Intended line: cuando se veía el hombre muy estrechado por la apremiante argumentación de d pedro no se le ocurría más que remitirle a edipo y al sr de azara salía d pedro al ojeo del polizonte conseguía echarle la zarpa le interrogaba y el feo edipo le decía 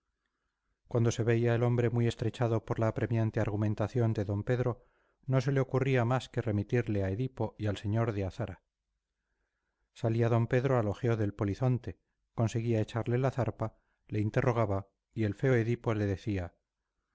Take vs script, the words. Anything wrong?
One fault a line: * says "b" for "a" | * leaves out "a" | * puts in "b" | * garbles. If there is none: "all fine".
all fine